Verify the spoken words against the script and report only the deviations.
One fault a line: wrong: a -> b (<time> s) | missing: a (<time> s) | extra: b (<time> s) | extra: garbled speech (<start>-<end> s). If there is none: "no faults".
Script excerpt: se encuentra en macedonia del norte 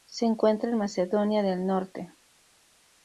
no faults